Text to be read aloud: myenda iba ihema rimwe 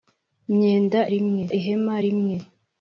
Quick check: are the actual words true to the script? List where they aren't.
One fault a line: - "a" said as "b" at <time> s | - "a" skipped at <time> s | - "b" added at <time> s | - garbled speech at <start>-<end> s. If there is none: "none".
- "iba" said as "rimwe" at 1.1 s